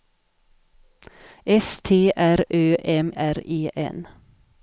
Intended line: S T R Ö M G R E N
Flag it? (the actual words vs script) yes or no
yes